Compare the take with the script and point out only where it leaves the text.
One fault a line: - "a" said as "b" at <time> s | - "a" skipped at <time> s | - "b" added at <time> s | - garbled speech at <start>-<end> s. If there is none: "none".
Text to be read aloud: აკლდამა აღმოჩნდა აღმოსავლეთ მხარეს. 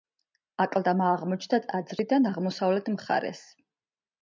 - "ტაძრიდან" added at 1.7 s